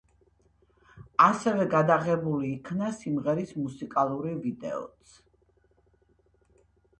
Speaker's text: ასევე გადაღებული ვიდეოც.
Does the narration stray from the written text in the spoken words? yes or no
yes